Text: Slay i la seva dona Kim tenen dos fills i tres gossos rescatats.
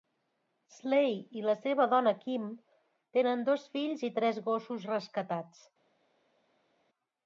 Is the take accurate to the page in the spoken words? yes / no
yes